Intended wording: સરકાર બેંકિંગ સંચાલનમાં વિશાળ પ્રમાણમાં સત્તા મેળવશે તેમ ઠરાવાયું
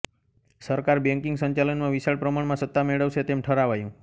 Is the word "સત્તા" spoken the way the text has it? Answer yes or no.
yes